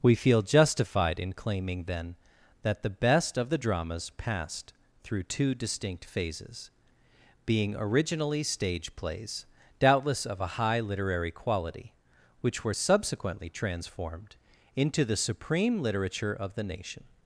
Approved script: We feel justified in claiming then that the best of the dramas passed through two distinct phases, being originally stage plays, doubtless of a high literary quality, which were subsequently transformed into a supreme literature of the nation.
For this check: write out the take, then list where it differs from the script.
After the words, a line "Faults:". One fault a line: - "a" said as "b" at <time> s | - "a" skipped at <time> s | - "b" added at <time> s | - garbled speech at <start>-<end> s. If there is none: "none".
We feel justified in claiming then that the best of the dramas passed through two distinct phases, being originally stage plays, doubtless of a high literary quality, which were subsequently transformed into the supreme literature of the nation.
Faults:
- "a" said as "the" at 15.0 s